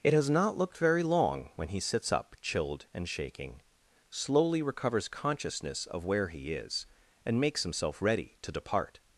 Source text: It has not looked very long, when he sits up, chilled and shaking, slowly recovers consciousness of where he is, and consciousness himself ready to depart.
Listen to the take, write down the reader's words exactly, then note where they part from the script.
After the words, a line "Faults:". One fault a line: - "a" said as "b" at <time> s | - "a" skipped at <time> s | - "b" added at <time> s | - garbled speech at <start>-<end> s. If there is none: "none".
It has not looked very long, when he sits up, chilled and shaking, slowly recovers consciousness of where he is, and makes himself ready to depart.
Faults:
- "consciousness" said as "makes" at 7.4 s